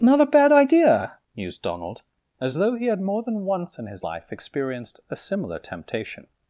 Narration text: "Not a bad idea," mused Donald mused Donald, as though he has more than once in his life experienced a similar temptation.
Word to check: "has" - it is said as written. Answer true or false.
false